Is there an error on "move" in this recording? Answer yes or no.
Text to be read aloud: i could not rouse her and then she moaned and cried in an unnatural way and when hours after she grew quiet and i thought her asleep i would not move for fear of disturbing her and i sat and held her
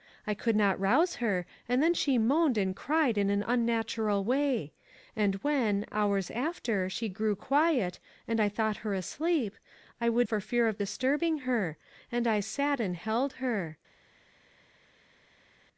yes